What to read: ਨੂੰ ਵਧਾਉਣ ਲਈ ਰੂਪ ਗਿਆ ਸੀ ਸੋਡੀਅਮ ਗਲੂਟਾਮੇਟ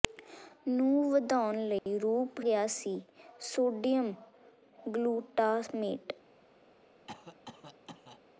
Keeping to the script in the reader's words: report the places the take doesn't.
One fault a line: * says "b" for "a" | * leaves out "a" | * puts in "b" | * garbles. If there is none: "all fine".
all fine